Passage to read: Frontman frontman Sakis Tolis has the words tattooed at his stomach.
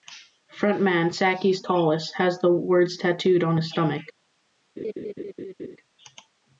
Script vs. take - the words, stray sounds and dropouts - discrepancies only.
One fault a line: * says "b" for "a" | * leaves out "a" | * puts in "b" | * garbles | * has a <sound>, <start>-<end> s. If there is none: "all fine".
* leaves out "frontman"
* says "on" for "at"
* has a laugh, 4.8-5.8 s